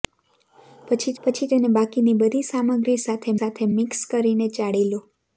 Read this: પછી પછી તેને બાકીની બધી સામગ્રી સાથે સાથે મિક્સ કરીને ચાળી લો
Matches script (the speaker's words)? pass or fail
pass